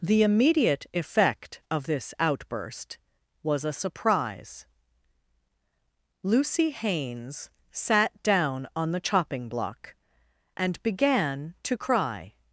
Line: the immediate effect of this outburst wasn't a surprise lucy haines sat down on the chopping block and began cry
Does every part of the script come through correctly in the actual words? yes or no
no